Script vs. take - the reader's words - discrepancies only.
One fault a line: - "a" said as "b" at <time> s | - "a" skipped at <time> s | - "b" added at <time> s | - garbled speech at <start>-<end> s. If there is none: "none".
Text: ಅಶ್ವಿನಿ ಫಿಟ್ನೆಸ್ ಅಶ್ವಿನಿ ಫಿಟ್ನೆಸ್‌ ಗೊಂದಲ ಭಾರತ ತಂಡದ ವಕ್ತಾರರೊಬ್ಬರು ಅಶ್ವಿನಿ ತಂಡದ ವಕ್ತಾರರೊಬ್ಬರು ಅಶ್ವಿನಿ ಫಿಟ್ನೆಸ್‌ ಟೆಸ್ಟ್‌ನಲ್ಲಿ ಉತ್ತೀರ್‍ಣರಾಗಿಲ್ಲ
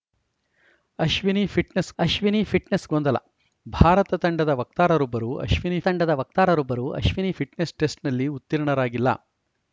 none